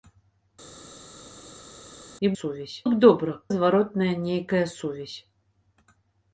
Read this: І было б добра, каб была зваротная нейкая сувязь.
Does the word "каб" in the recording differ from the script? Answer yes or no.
yes